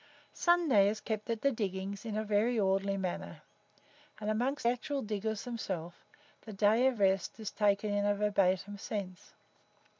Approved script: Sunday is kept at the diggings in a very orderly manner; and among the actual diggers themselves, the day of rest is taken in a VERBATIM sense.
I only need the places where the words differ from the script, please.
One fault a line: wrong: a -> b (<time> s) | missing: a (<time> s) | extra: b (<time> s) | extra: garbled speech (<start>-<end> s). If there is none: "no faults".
missing: the (4.6 s)